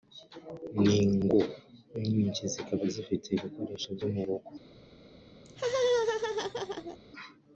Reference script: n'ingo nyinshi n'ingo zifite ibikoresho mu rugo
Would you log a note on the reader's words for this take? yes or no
yes